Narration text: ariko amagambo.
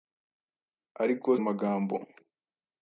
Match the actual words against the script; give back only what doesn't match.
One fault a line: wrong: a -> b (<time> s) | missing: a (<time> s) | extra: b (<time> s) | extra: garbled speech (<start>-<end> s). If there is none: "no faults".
no faults